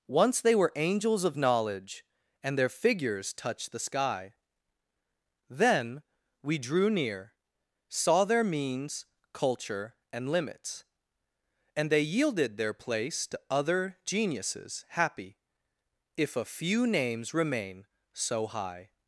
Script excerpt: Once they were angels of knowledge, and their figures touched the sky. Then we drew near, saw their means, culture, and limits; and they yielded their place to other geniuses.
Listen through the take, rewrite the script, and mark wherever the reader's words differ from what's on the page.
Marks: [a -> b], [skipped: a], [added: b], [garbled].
Once they were angels of knowledge, and their figures touched the sky. Then we drew near, saw their means, culture, and limits; and they yielded their place to other geniuses. [added: Happy if a few names remain so high]